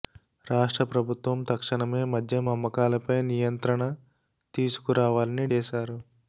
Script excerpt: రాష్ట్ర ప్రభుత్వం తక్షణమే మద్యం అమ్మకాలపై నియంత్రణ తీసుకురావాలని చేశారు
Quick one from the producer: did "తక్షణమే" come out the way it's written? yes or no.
yes